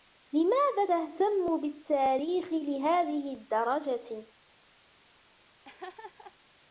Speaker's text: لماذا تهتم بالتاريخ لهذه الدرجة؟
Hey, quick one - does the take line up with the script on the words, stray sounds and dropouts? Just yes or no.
no